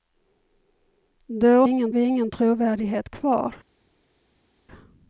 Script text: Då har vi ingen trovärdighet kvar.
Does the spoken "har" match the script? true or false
false